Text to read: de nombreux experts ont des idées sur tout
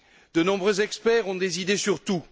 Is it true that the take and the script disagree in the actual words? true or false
false